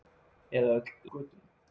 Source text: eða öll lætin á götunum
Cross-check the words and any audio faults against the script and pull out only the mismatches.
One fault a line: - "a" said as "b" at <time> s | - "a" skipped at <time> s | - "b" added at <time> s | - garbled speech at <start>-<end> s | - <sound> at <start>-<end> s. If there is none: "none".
- "lætin" skipped at 0.9 s